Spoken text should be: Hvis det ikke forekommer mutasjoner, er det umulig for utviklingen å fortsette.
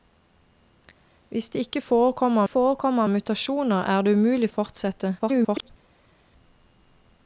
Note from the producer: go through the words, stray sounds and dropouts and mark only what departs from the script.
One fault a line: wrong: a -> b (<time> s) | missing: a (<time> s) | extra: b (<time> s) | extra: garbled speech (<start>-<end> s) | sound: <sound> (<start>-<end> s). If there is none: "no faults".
extra: forekommer (2.5 s)
missing: for utviklingen (4.5 s)
extra: garbled speech (5.2-5.7 s)